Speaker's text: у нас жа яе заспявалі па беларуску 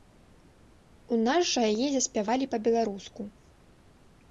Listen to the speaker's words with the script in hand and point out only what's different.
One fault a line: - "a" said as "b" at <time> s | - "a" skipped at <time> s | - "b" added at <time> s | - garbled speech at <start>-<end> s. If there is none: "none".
none